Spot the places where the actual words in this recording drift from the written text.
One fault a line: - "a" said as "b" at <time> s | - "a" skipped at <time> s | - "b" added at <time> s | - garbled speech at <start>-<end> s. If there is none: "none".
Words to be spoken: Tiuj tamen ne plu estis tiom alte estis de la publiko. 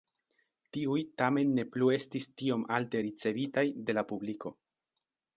- "estis" said as "ricevitaj" at 3.1 s